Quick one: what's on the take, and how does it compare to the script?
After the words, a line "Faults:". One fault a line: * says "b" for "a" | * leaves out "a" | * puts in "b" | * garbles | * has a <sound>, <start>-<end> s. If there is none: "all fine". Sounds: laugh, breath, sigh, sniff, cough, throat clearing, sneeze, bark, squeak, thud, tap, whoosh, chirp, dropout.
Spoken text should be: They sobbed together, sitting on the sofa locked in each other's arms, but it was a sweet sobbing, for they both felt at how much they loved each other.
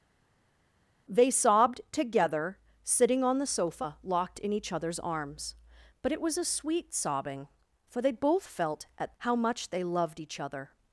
They sobbed together, sitting on the sofa locked in each other's arms, but it was a sweet sobbing, for they both felt at how much they loved each other.
Faults:
all fine